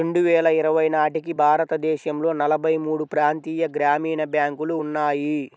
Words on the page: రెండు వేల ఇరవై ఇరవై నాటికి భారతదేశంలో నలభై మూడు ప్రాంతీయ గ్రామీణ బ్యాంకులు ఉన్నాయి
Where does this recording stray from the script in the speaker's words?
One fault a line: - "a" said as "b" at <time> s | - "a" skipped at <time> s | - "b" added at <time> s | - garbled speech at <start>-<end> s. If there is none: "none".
- "ఇరవై" skipped at 0.8 s